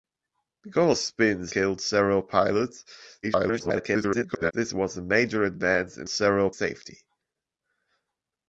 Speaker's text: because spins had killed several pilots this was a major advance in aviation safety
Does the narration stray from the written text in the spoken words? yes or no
yes